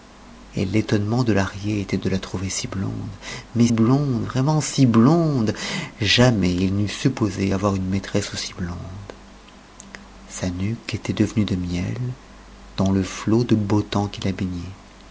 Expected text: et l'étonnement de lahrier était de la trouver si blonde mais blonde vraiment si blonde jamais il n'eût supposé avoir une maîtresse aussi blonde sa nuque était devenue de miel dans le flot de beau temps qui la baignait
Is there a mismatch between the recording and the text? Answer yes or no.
no